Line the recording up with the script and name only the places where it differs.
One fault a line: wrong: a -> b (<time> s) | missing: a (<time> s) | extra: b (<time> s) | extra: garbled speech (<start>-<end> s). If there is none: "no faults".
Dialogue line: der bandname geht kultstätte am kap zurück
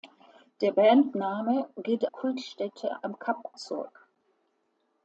no faults